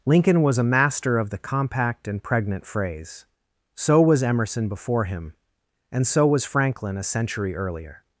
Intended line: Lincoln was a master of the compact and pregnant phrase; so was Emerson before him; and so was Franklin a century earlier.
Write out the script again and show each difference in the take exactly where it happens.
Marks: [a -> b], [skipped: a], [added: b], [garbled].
Lincoln was a master of the compact and pregnant phrase; so was Emerson before him; and so was Franklin a century earlier.